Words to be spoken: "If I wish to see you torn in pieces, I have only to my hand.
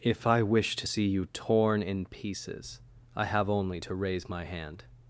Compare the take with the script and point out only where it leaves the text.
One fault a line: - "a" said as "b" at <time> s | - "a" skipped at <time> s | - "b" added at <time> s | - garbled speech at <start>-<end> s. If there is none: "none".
- "raise" added at 3.9 s